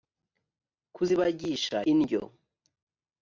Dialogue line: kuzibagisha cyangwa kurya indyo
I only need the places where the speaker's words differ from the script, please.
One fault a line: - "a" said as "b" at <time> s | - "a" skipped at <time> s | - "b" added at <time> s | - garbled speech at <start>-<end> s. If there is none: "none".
- "cyangwa kurya" skipped at 1.8 s